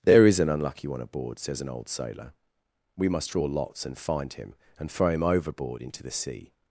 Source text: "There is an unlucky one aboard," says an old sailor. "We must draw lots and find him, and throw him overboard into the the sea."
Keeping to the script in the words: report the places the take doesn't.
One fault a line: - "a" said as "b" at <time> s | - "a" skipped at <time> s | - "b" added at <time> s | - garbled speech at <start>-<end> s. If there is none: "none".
- "the" skipped at 6.1 s